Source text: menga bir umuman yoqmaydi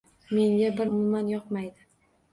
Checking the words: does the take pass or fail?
pass